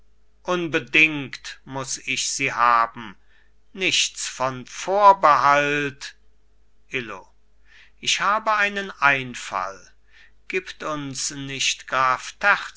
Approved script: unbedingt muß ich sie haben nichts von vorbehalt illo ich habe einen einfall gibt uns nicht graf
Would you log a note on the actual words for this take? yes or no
no